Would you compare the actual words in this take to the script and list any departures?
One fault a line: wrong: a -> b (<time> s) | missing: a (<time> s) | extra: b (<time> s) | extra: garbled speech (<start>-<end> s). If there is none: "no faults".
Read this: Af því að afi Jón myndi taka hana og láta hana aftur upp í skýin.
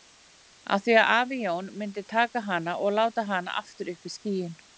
no faults